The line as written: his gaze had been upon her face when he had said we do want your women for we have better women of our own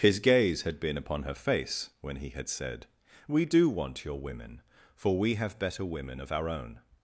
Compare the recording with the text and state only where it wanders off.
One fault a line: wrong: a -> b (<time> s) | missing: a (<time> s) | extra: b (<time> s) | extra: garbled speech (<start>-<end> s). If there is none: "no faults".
no faults